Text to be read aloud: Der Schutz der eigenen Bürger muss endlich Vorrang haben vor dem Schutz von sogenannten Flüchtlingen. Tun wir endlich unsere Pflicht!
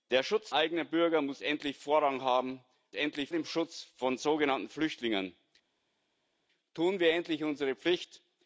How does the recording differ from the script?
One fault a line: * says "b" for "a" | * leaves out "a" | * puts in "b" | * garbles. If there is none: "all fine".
* leaves out "der"
* says "endlich" for "vor"